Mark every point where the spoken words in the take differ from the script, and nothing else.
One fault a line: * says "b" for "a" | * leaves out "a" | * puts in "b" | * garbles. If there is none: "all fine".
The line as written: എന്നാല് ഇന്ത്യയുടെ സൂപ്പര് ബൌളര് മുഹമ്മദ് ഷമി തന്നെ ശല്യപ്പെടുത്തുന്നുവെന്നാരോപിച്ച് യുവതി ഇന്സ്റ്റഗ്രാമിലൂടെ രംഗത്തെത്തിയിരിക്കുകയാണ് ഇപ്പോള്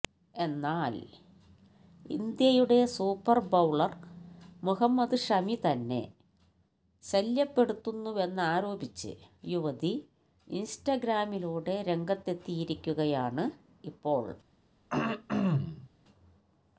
all fine